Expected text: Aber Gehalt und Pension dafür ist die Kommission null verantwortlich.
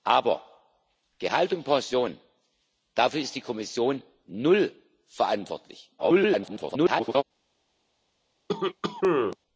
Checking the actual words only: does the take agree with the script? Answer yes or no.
no